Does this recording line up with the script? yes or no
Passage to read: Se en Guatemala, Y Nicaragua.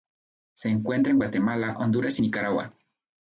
no